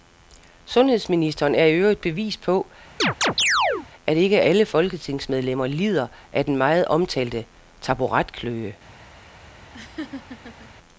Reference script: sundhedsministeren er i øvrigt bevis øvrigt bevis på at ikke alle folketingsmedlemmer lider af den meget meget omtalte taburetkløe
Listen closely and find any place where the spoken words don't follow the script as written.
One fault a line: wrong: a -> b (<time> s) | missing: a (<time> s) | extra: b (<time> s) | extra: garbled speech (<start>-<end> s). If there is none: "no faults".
missing: øvrigt bevis (2.4 s)
missing: meget (6.8 s)